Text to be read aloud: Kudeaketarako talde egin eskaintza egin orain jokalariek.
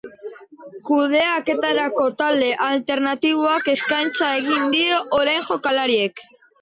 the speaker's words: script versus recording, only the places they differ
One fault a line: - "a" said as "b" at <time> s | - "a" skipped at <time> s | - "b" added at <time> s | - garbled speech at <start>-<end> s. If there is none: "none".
- "egin" said as "alternatiboak" at 2.7 s
- "die" added at 4.8 s